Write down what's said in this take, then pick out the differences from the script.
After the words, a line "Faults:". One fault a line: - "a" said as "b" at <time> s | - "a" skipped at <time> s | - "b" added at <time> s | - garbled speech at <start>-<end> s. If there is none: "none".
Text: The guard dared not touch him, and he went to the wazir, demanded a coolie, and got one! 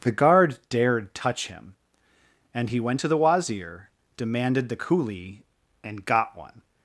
The guard dared touch him, and he went to the wazir, demanded the coolie, and got one!
Faults:
- "not" skipped at 1.1 s
- "a" said as "the" at 4.7 s